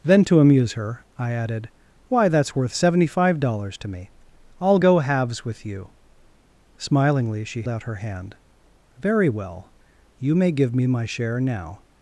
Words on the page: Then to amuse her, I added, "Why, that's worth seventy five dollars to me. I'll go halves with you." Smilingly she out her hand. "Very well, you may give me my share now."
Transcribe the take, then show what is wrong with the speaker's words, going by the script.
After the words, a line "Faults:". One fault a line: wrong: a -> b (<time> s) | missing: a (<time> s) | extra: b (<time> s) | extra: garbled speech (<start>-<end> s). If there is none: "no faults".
Then to amuse her, I added, "Why, that's worth seventy five dollars to me. I'll go halves with you." Smilingly she out her hand. "Very well, you may give me my share now."
Faults:
no faults